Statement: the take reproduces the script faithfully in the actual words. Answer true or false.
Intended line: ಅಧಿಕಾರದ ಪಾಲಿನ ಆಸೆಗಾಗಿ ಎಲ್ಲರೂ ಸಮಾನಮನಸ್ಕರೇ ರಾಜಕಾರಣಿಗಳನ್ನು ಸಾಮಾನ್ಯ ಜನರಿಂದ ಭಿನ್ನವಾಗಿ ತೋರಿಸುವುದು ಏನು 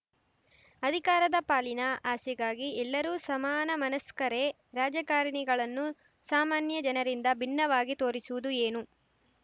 true